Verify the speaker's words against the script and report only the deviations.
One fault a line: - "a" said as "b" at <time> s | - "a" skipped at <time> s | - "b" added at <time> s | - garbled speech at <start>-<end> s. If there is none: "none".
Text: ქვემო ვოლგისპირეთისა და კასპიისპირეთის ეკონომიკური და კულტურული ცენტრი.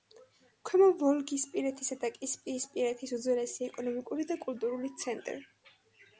- "უძველესი" added at 3.2 s